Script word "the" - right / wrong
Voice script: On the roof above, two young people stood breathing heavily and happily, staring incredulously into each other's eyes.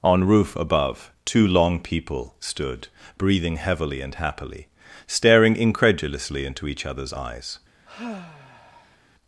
wrong